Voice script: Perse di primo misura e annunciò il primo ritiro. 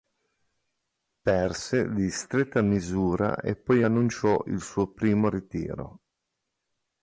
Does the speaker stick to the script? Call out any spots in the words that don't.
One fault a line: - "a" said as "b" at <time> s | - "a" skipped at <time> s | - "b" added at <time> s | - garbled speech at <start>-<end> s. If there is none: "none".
- "primo" said as "stretta" at 2.1 s
- "poi" added at 3.5 s
- "suo" added at 4.6 s